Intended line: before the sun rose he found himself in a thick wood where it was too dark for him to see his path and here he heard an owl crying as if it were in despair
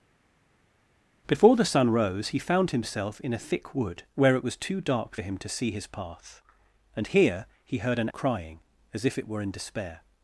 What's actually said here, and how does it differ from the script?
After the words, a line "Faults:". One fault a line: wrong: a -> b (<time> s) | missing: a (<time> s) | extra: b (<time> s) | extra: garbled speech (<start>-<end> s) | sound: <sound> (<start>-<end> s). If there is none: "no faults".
before the sun rose he found himself in a thick wood where it was too dark for him to see his path and here he heard an crying as if it were in despair
Faults:
missing: owl (8.1 s)